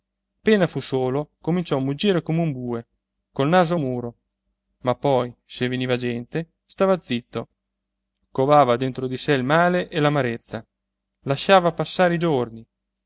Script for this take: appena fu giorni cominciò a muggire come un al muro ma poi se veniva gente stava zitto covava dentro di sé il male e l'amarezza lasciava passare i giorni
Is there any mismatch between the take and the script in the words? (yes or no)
yes